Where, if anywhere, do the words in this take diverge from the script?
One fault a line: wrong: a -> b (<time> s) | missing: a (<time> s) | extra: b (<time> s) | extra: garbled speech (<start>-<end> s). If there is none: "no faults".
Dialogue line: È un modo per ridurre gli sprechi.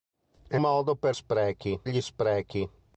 missing: un (0.6 s)
wrong: ridurre -> sprechi (1.1 s)